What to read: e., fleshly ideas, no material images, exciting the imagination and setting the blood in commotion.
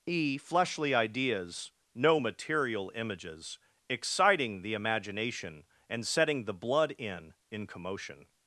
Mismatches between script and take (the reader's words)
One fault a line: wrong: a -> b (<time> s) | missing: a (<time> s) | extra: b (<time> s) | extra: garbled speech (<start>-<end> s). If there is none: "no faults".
extra: in (7.5 s)